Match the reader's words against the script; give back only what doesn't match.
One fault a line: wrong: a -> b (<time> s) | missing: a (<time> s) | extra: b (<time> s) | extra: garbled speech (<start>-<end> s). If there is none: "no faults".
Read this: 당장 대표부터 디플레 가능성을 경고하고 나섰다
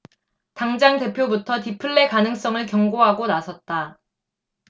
no faults